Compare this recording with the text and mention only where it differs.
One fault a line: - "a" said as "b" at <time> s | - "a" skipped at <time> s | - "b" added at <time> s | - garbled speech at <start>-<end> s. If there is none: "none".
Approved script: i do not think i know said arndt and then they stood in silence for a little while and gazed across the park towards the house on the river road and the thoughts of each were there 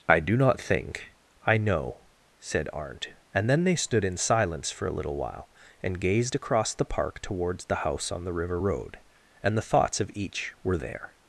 none